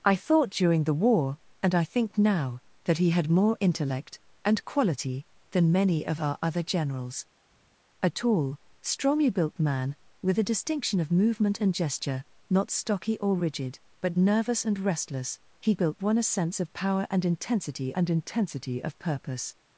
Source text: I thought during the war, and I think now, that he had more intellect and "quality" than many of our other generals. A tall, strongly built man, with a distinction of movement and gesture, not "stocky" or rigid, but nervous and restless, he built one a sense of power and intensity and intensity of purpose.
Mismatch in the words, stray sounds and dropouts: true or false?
false